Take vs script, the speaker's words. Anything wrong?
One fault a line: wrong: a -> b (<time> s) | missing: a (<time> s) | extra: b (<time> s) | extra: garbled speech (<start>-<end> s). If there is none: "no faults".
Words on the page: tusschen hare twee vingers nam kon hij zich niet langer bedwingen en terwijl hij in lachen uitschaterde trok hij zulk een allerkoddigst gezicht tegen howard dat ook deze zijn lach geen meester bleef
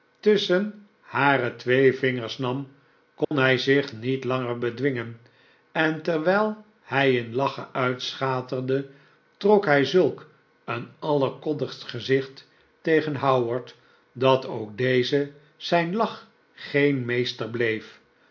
no faults